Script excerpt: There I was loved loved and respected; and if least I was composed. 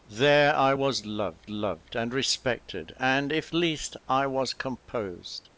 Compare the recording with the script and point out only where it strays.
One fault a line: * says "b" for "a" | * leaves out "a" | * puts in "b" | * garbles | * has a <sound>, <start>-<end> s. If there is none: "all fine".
all fine